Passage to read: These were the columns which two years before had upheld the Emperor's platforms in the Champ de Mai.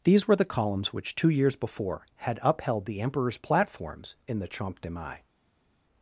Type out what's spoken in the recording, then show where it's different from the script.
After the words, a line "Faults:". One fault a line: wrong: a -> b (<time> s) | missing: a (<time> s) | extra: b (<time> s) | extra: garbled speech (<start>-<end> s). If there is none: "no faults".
These were the columns which two years before had upheld the Emperor's platforms in the Champ de Mai.
Faults:
no faults